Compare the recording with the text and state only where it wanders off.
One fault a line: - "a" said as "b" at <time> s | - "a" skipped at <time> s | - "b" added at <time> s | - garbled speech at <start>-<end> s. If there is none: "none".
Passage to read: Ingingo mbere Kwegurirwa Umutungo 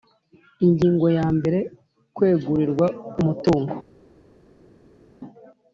- "ya" added at 1.2 s